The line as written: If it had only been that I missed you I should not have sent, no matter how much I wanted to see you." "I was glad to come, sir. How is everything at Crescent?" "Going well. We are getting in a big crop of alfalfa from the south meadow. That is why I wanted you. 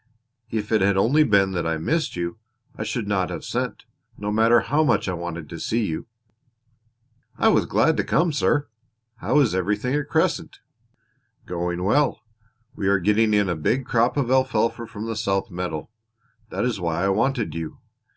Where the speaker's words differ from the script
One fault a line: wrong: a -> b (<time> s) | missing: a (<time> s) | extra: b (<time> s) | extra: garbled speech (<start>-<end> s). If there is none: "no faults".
no faults